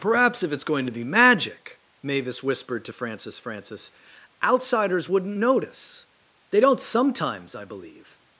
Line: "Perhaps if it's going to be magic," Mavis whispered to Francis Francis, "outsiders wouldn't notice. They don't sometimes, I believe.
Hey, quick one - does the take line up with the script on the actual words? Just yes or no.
yes